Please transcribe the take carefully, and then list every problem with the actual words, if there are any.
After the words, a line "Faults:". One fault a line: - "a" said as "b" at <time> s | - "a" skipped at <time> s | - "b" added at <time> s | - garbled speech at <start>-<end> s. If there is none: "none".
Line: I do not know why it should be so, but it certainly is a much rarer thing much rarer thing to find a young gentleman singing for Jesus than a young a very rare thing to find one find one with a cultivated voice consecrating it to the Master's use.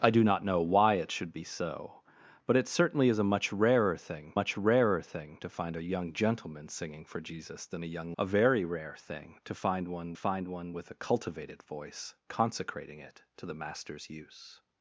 I do not know why it should be so, but it certainly is a much rarer thing much rarer thing to find a young gentleman singing for Jesus than a young a very rare thing to find one find one with a cultivated voice consecrating it to the Master's use.
Faults:
none